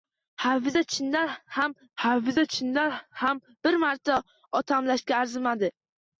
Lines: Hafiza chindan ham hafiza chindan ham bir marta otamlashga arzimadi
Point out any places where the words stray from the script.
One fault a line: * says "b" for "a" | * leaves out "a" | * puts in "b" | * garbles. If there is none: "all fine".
all fine